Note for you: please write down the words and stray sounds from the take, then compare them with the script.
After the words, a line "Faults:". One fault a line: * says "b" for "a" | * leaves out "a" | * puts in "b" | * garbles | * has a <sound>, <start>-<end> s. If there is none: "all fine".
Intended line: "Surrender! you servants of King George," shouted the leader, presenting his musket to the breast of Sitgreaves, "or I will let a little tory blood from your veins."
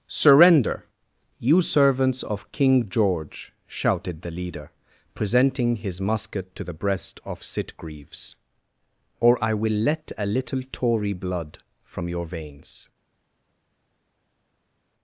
"Surrender! you servants of King George," shouted the leader, presenting his musket to the breast of Sitgreaves, "or I will let a little tory blood from your veins."
Faults:
all fine